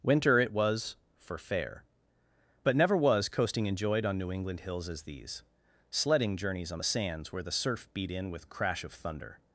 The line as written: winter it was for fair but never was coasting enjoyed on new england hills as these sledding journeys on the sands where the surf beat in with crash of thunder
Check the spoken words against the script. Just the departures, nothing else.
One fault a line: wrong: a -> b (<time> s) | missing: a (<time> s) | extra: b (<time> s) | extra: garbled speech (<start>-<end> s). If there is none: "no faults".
no faults